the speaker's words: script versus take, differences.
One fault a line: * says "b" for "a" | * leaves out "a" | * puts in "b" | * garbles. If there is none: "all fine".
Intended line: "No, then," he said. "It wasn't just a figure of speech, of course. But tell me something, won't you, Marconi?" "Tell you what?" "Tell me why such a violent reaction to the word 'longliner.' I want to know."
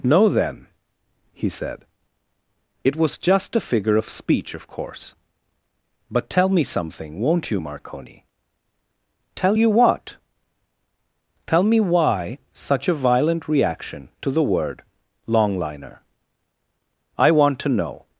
* says "was" for "wasn't"